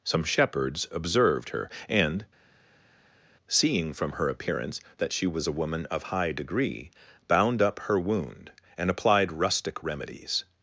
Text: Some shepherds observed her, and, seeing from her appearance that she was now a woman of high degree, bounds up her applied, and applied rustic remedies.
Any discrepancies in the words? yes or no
yes